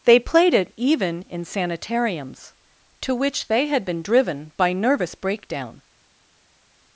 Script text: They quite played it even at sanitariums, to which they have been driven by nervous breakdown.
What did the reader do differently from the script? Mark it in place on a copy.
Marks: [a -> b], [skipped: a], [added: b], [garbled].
They [skipped: quite] played it even [at -> in] sanitariums, to which they [have -> had] been driven by nervous breakdown.